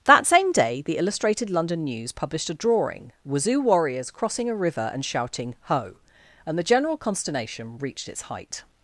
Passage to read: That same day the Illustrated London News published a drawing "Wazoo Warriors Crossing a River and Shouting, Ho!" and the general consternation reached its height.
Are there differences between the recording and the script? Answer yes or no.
no